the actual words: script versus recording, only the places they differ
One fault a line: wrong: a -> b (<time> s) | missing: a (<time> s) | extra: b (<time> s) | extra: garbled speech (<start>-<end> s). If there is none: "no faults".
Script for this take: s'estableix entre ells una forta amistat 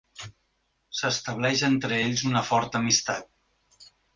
no faults